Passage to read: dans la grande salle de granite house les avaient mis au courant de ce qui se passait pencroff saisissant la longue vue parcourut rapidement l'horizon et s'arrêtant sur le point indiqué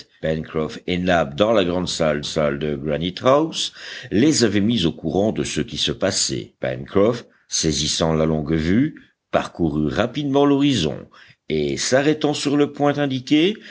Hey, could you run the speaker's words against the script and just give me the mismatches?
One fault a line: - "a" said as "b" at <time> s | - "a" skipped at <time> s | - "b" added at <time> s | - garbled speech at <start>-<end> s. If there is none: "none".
- "salle" added at 2.2 s